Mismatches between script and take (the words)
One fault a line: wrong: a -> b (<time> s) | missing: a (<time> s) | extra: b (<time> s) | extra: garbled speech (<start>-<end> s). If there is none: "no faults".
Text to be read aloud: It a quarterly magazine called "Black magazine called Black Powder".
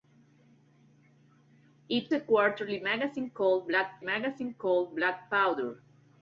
no faults